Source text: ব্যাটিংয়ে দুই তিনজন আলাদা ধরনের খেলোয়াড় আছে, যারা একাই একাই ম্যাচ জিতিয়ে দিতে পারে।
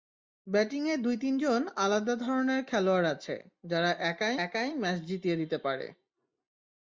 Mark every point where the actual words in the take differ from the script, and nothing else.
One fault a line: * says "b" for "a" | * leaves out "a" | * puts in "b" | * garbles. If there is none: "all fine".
all fine